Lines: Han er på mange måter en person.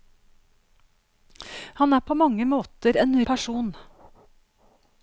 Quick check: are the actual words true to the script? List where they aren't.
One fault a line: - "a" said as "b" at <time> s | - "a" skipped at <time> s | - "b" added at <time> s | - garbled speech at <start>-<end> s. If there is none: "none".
none